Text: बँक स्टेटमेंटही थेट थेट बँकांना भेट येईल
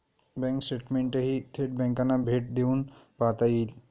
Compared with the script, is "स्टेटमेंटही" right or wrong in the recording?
right